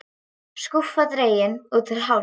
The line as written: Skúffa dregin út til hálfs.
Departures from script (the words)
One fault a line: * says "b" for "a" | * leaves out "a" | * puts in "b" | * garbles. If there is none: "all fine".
all fine